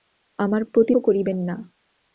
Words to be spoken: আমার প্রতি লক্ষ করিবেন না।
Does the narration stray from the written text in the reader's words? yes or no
yes